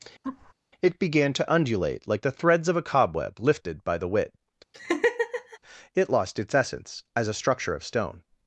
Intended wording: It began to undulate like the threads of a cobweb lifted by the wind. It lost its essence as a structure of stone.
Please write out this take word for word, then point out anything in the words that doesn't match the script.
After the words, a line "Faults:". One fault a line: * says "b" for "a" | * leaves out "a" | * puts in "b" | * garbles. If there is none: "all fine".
It began to undulate like the threads of a cobweb lifted by the wit. It lost its essence as a structure of stone.
Faults:
* says "wit" for "wind"